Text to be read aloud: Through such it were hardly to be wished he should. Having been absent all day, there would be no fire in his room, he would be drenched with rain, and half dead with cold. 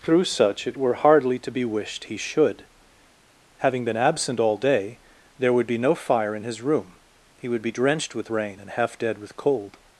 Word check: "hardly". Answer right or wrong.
right